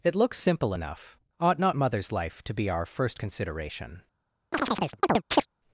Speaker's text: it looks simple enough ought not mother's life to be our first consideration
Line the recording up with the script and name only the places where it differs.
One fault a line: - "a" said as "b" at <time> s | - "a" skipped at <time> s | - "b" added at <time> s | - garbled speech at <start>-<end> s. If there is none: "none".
none